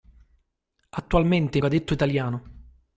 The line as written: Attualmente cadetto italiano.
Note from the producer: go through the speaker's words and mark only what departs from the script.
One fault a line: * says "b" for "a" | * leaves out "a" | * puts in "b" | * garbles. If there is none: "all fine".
all fine